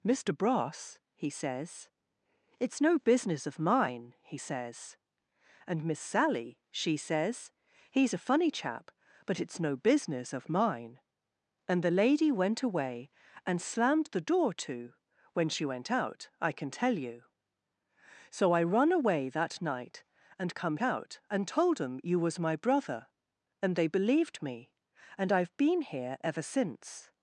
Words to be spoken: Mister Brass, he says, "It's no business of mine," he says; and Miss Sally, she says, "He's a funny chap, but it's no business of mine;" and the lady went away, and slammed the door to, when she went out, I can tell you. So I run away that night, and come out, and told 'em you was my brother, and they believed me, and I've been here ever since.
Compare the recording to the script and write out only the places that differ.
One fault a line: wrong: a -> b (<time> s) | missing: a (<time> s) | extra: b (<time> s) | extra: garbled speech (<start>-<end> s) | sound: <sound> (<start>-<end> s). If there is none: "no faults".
no faults